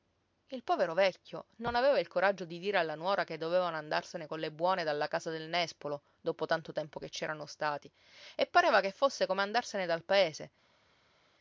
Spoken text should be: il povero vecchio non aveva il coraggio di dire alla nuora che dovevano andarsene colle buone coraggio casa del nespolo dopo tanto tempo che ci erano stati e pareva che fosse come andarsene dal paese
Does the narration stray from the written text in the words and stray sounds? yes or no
yes